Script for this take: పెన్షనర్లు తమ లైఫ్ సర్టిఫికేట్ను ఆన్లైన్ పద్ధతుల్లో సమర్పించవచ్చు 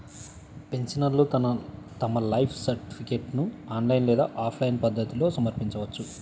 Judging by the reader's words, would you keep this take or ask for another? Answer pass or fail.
fail